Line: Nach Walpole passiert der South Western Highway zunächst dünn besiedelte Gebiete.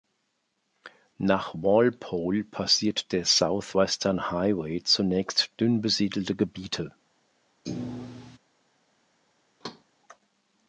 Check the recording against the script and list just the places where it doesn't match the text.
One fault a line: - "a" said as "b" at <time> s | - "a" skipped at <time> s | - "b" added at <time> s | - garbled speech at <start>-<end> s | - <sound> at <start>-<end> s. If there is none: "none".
- thud at 7.7-8.4 s
- thud at 9.6-9.8 s